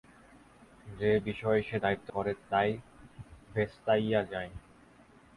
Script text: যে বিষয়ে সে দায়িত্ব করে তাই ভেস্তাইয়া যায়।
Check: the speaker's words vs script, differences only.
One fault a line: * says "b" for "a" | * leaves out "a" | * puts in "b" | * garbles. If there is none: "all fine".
all fine